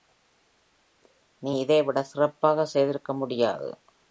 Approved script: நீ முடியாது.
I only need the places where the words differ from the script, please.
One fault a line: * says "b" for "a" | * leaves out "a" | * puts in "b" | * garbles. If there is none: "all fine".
* puts in "இதைவிட சிறப்பாக செய்திருக்க"